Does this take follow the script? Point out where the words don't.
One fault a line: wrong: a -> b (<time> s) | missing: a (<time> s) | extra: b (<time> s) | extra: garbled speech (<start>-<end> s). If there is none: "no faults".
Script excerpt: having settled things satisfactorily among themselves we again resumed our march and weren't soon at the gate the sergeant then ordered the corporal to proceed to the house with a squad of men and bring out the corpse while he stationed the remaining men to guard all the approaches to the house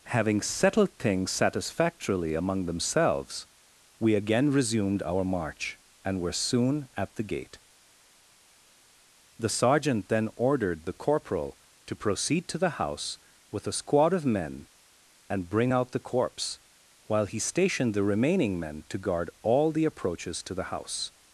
wrong: weren't -> were (6.2 s)